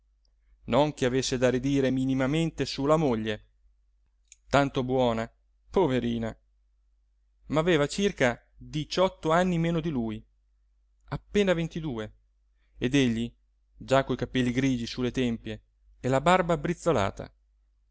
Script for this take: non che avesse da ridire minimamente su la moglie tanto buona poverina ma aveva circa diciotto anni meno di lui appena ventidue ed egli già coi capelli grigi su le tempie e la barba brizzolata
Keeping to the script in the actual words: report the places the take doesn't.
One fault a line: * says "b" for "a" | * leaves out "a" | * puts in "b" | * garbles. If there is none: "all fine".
all fine